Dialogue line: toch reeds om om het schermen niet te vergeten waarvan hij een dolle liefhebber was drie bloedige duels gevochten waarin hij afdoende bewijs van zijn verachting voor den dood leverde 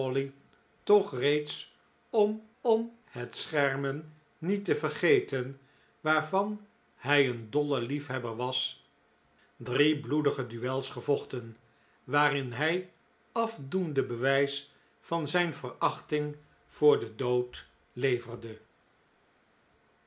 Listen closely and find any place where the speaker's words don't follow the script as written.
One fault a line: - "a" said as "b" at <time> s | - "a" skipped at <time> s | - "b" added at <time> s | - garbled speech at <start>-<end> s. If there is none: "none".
none